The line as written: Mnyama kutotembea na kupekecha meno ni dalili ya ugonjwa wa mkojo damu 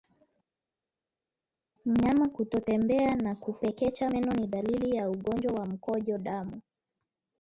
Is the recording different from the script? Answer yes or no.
no